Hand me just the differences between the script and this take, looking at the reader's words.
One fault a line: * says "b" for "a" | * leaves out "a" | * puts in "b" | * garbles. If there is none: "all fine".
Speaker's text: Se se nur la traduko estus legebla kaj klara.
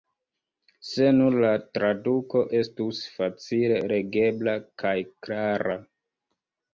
* leaves out "se"
* puts in "facile"